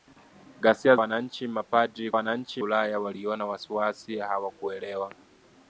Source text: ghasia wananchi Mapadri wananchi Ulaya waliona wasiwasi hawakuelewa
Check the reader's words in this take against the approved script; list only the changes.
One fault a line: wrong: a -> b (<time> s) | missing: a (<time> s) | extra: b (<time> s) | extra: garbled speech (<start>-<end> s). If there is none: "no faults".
no faults